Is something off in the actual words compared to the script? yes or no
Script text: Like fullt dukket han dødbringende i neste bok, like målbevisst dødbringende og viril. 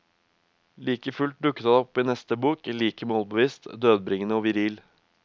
yes